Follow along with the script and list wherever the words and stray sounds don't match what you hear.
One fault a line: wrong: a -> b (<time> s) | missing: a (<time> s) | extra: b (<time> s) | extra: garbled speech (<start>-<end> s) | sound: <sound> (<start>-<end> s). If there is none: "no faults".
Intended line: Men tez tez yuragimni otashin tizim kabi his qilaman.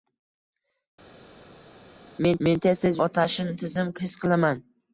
extra: men (2.5 s)
missing: yuragimni (3.0 s)
missing: kabi (3.9 s)